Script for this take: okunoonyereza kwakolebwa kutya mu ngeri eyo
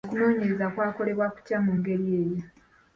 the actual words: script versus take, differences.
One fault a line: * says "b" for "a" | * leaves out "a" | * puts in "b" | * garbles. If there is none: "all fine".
all fine